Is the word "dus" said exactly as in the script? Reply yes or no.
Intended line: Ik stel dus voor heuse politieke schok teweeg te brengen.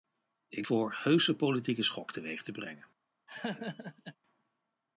no